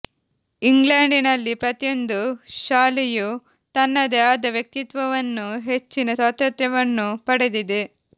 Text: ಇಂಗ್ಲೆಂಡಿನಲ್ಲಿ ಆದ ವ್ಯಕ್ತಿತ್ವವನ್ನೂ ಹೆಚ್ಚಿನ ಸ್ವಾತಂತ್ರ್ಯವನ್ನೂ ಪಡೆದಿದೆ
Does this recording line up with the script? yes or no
no